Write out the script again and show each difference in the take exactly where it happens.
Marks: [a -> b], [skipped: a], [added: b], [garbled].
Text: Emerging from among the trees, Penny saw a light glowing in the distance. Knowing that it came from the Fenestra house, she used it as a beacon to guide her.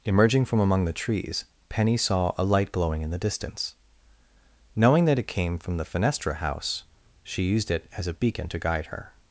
Emerging from among the trees, Penny saw a light glowing in the distance. Knowing that it came from the Fenestra house, she used it as a beacon to guide her.